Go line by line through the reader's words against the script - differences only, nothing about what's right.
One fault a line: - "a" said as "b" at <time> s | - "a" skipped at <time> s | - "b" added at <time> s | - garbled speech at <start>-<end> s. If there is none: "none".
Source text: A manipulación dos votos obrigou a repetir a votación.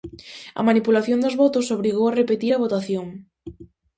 none